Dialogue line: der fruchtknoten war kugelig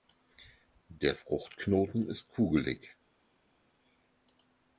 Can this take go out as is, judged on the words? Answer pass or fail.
fail